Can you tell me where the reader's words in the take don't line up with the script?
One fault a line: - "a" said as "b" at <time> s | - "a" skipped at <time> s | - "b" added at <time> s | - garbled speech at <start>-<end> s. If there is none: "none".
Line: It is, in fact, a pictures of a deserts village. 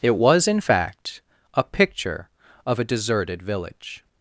- "is" said as "was" at 0.1 s
- "pictures" said as "picture" at 1.6 s
- "deserts" said as "deserted" at 2.8 s